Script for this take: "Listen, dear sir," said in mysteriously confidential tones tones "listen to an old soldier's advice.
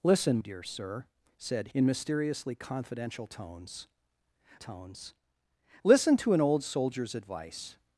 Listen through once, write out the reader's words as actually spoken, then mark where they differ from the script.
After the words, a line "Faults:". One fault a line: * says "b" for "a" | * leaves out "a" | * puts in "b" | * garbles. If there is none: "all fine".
"Listen, dear sir," said in mysteriously confidential tones tones "listen to an old soldier's advice.
Faults:
all fine